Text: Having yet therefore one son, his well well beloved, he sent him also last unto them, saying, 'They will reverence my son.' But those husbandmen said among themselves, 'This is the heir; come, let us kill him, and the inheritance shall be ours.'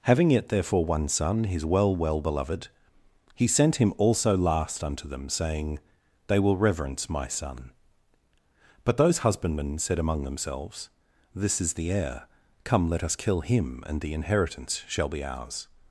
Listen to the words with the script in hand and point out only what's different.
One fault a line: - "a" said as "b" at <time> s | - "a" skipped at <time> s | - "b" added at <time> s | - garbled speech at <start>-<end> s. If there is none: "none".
none